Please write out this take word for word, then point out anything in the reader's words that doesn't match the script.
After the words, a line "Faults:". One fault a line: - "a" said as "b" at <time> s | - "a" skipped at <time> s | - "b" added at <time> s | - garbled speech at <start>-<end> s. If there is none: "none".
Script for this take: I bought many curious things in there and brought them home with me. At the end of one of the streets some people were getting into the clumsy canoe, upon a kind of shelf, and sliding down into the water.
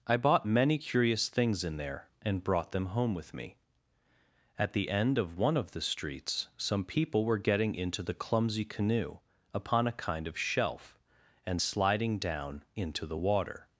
I bought many curious things in there and brought them home with me. At the end of one of the streets some people were getting into the clumsy canoe, upon a kind of shelf, and sliding down into the water.
Faults:
none